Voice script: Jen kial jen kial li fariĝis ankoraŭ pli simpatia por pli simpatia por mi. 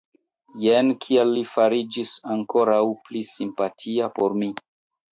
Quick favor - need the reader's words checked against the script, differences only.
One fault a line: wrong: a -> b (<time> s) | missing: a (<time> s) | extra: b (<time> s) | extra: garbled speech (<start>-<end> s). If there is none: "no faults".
missing: jen kial (1.3 s)
missing: pli simpatia por (4.4 s)